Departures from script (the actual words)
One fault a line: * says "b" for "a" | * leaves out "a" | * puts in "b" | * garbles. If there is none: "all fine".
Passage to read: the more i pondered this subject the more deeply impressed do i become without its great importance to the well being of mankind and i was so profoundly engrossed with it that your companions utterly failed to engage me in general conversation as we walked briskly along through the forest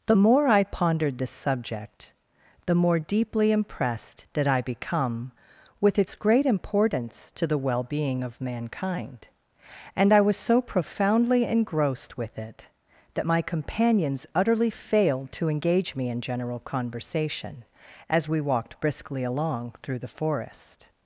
* says "did" for "do"
* says "with" for "without"
* says "my" for "your"